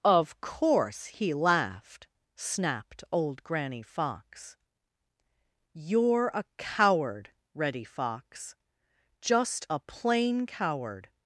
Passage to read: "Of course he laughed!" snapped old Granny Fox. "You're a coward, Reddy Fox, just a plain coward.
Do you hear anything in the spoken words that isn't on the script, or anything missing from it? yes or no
no